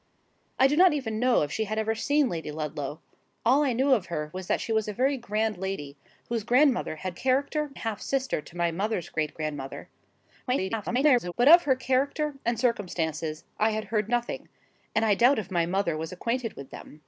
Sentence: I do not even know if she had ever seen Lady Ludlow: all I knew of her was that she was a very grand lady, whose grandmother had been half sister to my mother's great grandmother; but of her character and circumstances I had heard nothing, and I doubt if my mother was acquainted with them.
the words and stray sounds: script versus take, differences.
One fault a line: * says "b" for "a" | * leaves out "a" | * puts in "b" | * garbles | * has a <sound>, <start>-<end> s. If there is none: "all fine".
* says "character" for "been"
* garbles